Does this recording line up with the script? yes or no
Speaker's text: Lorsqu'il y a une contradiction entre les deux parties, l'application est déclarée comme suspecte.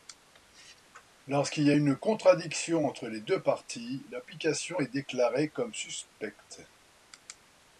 yes